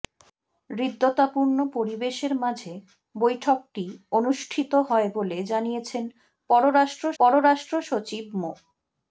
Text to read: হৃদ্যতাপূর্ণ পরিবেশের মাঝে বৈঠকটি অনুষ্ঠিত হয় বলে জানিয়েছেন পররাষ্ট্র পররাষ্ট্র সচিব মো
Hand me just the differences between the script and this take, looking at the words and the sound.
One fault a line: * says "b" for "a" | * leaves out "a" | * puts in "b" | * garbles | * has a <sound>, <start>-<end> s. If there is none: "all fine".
all fine